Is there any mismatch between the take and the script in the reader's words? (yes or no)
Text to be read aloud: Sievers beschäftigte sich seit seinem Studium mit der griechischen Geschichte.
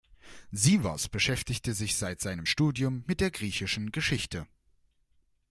no